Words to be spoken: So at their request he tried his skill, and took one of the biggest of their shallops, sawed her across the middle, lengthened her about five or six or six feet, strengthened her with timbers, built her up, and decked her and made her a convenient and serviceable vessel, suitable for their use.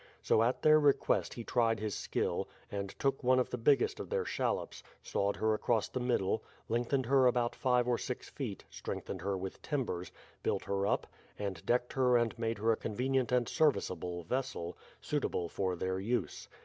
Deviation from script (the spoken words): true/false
true